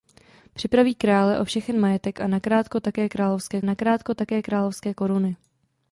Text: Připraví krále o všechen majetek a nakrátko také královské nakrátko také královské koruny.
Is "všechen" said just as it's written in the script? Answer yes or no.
yes